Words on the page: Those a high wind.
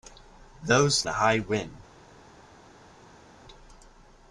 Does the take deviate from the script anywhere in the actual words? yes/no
no